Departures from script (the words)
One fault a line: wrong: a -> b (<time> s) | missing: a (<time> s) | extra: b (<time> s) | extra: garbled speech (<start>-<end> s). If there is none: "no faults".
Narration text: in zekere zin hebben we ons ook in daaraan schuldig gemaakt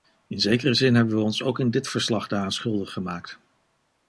extra: dit verslag (1.7 s)